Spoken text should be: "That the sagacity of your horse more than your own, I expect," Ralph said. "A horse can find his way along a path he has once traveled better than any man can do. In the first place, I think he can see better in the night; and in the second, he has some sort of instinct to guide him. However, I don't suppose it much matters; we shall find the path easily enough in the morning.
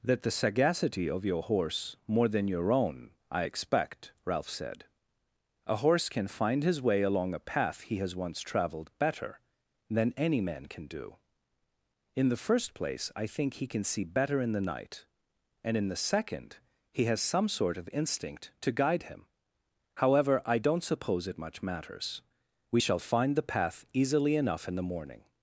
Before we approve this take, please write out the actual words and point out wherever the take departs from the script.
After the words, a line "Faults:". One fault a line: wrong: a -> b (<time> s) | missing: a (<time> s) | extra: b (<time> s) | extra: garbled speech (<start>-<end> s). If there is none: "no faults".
"That the sagacity of your horse more than your own, I expect," Ralph said. "A horse can find his way along a path he has once traveled better than any man can do. In the first place, I think he can see better in the night; and in the second, he has some sort of instinct to guide him. However, I don't suppose it much matters; we shall find the path easily enough in the morning.
Faults:
no faults